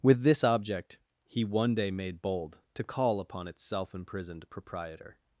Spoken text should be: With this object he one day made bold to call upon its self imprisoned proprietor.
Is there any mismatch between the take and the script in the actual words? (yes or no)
no